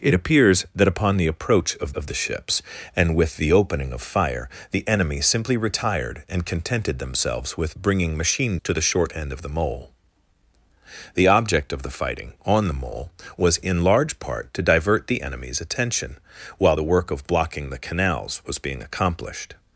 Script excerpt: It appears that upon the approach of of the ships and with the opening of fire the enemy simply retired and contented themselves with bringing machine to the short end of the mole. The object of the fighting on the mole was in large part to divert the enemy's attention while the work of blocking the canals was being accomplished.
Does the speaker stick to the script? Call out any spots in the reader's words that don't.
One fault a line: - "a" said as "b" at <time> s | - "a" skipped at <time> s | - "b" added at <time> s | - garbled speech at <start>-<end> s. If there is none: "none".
none